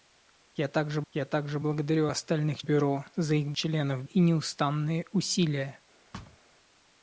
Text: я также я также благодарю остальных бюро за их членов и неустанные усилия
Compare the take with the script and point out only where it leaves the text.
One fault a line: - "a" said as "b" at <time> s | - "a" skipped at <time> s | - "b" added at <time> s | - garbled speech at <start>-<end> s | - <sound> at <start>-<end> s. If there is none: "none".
- thud at 6.1-6.4 s